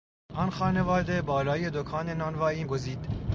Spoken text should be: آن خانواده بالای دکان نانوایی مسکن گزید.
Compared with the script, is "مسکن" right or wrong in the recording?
wrong